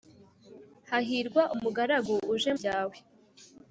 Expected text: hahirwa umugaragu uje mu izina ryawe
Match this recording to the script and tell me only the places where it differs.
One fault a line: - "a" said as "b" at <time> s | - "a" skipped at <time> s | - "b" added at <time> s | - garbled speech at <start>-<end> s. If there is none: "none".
- "mu izina" skipped at 2.5 s